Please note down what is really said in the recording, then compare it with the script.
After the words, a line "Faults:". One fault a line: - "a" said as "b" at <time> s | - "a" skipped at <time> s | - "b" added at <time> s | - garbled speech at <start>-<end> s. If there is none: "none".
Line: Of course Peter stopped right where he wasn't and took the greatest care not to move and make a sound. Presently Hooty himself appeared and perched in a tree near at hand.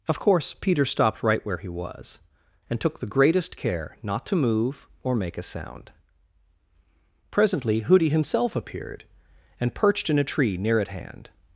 Of course Peter stopped right where he was and took the greatest care not to move or make a sound. Presently Hooty himself appeared and perched in a tree near at hand.
Faults:
- "wasn't" said as "was" at 1.7 s
- "and" said as "or" at 5.0 s